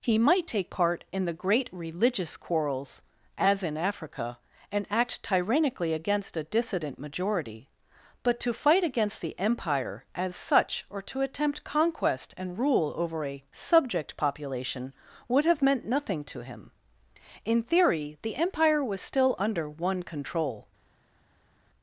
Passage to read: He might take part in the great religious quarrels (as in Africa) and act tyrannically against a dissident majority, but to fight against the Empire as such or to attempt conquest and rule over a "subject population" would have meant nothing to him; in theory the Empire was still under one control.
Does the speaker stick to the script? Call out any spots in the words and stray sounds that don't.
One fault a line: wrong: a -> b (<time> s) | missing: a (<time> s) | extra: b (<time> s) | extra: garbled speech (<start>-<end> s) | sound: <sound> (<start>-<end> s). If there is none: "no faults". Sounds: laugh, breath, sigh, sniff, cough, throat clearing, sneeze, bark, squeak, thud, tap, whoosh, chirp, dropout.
no faults